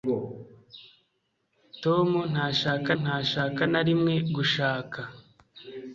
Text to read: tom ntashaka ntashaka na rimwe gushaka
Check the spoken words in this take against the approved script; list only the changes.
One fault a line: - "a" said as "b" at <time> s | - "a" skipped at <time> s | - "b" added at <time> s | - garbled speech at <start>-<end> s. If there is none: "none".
none